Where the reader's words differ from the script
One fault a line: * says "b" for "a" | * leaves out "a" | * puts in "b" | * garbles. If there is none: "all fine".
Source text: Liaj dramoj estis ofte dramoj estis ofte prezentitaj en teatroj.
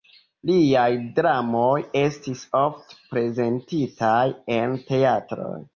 * leaves out "dramoj estis ofte"